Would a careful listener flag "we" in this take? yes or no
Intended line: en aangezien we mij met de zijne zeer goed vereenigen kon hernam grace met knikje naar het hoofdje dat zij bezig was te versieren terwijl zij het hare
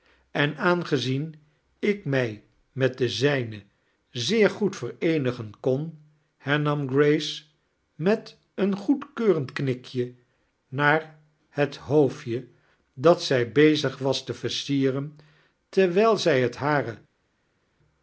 yes